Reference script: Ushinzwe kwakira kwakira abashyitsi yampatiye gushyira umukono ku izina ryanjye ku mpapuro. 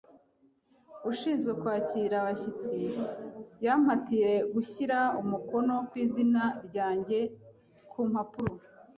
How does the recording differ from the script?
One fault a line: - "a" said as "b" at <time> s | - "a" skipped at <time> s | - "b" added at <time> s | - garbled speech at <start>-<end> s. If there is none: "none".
- "kwakira" skipped at 2.1 s